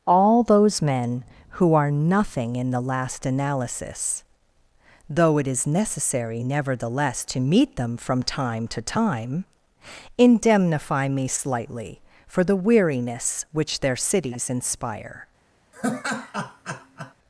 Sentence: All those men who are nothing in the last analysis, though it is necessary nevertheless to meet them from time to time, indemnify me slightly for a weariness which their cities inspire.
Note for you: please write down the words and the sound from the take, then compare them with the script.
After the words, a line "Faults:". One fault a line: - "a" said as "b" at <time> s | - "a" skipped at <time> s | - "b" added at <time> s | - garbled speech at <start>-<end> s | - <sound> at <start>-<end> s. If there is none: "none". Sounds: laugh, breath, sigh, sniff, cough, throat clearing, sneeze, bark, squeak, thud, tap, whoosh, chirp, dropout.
All those men who are nothing in the last analysis, though it is necessary nevertheless to meet them from time to time, indemnify me slightly for the weariness which their cities inspire.
Faults:
- "a" said as "the" at 12.4 s
- laugh at 15.7-17.1 s